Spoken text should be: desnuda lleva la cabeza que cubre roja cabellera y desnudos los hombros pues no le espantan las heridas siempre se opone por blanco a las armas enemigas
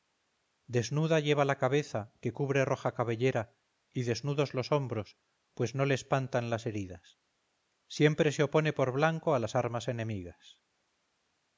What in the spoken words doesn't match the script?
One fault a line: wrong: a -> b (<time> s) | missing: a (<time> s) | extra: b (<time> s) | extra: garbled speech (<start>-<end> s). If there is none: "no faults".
no faults